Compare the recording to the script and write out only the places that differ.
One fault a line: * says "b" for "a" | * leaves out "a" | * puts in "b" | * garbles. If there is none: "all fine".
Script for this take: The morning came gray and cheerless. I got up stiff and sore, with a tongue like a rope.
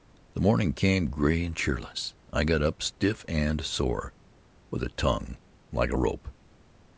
all fine